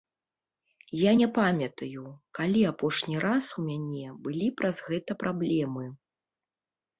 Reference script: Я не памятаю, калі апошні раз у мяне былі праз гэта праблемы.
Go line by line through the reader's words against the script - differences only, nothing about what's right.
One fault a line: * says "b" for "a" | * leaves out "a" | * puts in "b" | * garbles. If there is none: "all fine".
all fine